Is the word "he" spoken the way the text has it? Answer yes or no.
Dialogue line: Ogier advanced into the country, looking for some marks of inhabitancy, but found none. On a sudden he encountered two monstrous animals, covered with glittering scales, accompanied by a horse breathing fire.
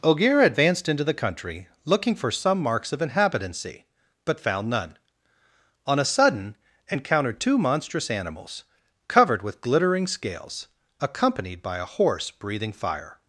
no